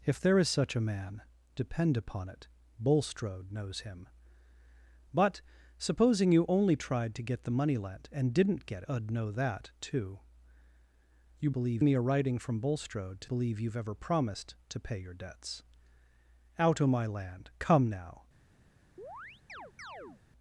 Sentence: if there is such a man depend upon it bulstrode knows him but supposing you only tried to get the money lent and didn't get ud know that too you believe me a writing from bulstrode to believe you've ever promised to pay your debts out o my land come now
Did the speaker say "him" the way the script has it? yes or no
yes